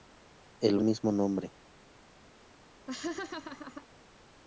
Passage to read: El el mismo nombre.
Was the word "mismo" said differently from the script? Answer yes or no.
no